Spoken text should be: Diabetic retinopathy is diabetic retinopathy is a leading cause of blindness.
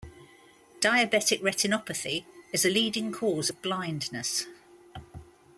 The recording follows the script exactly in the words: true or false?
false